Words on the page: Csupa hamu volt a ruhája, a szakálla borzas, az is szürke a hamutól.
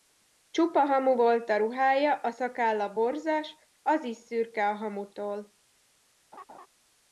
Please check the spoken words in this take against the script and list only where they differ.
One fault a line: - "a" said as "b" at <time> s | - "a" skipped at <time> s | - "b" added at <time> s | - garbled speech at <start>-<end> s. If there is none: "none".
none